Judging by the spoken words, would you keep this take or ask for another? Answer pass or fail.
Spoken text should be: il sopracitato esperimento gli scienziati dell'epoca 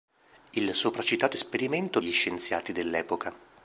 pass